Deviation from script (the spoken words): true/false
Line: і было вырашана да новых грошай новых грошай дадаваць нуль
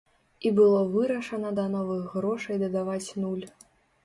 true